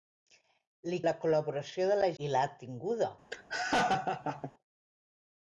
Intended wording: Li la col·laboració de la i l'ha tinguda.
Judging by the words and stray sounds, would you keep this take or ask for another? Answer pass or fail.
fail